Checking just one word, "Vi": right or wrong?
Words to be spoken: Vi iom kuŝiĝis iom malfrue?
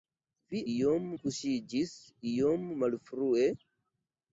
right